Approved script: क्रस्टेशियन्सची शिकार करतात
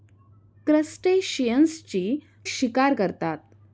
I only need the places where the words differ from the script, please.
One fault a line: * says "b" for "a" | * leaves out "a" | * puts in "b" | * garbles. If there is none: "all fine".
all fine